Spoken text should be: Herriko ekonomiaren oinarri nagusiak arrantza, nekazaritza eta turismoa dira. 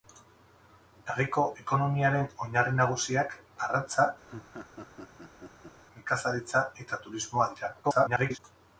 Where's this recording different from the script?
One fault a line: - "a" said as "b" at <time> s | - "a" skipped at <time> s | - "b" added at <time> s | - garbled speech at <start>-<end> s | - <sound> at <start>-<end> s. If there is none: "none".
- laugh at 4.2-5.8 s
- garbled speech at 7.8-8.4 s